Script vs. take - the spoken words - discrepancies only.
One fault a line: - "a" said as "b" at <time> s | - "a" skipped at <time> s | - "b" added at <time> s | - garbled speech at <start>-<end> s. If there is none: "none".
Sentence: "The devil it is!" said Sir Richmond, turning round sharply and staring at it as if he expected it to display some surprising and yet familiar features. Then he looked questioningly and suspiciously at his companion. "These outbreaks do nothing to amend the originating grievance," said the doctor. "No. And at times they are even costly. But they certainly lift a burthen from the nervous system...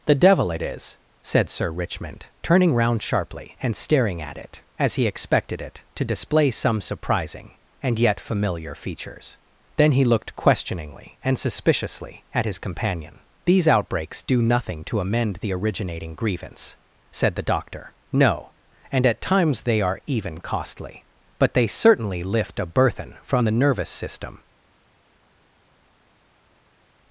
- "if" skipped at 5.0 s